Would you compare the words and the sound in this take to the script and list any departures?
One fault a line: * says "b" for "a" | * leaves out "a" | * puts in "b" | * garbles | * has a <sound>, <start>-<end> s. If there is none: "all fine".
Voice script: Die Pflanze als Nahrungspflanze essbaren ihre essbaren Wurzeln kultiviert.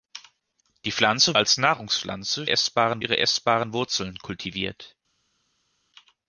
all fine